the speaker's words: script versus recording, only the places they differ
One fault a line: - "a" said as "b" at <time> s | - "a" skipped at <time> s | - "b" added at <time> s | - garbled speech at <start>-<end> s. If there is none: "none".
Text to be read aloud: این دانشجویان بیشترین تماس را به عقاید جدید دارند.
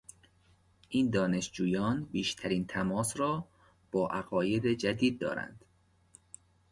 - "به" said as "با" at 3.9 s